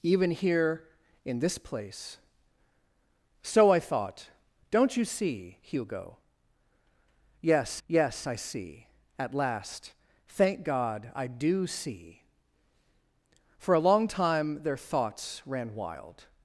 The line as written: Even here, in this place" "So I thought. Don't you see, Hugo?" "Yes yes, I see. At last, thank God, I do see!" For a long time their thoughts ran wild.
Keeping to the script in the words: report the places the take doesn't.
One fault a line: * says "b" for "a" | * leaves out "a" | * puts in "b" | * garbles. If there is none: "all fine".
all fine